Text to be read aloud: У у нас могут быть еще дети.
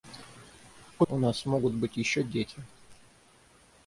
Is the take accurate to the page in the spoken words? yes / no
yes